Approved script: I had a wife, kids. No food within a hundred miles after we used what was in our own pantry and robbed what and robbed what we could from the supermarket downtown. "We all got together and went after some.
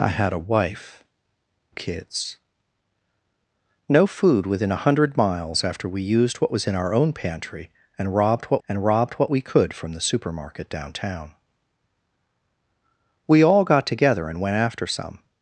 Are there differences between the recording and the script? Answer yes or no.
no